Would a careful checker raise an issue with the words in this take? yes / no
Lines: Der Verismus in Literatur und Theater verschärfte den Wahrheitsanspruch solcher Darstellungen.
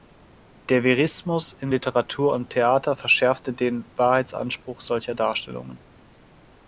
no